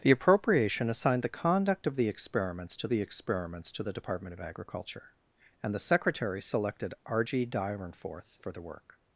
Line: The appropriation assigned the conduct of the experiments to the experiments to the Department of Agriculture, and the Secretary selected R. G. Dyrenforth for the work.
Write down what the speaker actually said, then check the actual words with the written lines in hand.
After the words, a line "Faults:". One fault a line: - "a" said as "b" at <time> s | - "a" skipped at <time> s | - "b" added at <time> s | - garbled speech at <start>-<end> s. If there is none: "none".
The appropriation assigned the conduct of the experiments to the experiments to the Department of Agriculture, and the Secretary selected R. G. Dyrenforth for the work.
Faults:
none